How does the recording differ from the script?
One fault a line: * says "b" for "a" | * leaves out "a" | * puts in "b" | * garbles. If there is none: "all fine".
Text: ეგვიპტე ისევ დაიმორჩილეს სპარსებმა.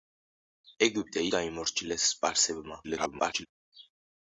* leaves out "ისევ"
* garbles